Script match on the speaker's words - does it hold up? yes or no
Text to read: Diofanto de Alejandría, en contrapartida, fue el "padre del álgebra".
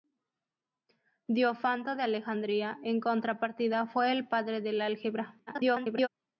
no